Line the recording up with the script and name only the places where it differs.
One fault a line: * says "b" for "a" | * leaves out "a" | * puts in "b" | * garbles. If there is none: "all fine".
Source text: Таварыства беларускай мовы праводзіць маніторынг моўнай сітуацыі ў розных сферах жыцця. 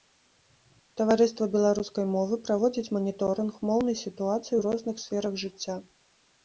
all fine